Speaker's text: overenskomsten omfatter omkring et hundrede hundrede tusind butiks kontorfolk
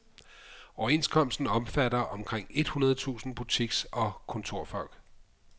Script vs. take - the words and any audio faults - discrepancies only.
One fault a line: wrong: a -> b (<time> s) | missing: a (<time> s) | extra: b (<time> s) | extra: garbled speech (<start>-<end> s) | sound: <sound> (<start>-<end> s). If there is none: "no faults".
missing: hundrede (3.0 s)
extra: og (3.9 s)